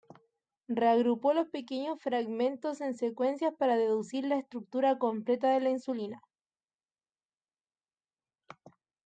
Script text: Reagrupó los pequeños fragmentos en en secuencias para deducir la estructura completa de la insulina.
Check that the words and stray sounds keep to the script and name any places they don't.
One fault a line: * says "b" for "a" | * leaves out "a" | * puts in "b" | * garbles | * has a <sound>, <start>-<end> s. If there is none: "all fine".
* leaves out "en"